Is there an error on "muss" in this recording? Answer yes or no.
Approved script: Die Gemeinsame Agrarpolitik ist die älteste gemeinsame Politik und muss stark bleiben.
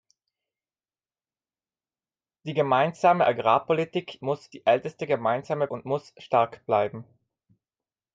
no